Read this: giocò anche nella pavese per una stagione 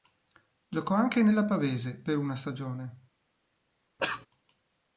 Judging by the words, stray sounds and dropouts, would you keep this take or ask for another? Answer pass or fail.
fail